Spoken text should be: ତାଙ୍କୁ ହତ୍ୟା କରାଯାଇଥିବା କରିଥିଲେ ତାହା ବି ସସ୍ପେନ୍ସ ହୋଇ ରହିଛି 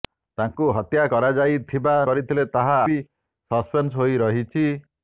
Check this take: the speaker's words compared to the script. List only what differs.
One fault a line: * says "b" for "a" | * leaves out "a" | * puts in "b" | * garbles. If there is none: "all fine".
all fine